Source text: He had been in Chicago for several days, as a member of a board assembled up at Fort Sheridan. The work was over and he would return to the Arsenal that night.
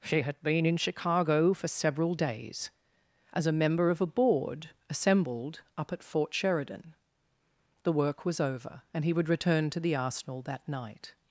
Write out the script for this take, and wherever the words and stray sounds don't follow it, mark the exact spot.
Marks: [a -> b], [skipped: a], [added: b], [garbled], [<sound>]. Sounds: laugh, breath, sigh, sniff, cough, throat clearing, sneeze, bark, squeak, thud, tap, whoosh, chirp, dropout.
[He -> She] had been in Chicago for several days, as a member of a board assembled up at Fort Sheridan. The work was over and he would return to the Arsenal that night.